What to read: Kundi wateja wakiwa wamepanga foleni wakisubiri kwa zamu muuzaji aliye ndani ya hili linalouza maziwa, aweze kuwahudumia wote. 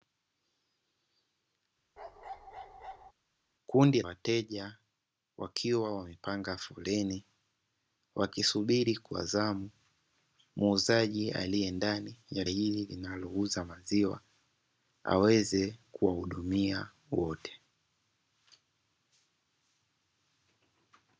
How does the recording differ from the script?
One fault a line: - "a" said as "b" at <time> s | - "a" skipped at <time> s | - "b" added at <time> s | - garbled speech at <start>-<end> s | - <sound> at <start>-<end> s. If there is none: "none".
- bark at 2.0-3.1 s